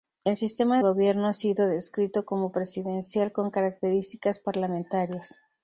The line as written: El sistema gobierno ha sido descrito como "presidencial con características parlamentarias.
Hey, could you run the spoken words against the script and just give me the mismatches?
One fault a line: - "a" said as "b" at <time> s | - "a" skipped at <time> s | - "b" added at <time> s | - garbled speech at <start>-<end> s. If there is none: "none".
none